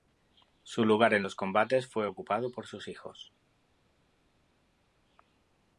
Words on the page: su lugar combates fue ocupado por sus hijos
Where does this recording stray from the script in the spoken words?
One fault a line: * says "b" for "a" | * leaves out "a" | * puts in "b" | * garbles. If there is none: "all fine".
* puts in "en los"